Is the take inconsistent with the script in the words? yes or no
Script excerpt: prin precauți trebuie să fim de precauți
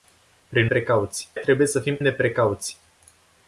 no